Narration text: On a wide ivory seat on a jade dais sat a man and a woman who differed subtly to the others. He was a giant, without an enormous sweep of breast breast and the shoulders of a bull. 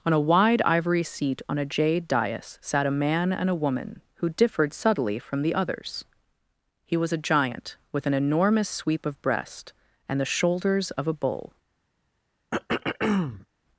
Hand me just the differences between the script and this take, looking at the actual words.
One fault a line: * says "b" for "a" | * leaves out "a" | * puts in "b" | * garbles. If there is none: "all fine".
* says "from" for "to"
* says "with" for "without"
* leaves out "breast"